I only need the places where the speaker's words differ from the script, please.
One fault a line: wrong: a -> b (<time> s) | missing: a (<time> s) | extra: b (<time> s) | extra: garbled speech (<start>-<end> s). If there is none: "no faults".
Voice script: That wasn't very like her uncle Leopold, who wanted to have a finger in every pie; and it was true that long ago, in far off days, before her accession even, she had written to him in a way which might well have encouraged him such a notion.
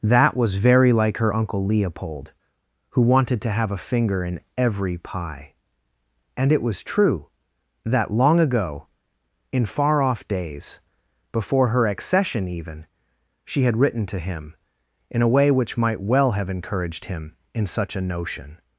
wrong: wasn't -> was (0.3 s)
extra: in (17.5 s)